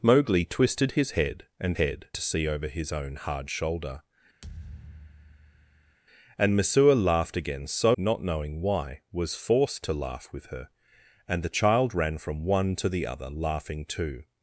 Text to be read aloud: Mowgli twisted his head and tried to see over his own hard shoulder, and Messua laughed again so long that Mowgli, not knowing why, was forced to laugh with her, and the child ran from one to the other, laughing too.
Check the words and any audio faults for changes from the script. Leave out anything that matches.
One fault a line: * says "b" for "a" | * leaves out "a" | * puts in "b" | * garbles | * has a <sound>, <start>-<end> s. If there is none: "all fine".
* says "head" for "tried"
* has a thud, 4.4-6.0 s
* leaves out "long that Mowgli"